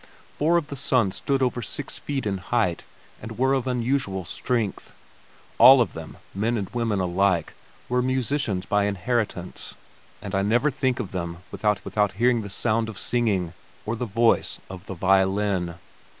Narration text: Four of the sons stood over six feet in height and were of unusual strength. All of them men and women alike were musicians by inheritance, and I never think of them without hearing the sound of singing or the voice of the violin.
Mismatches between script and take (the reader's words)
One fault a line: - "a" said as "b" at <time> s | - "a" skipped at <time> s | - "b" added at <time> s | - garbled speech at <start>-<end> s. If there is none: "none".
- "without" added at 11.8 s